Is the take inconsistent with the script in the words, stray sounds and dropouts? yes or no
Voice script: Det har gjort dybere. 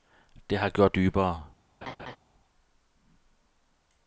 yes